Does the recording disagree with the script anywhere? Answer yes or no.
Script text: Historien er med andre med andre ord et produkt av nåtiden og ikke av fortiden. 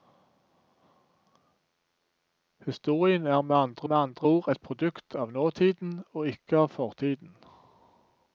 no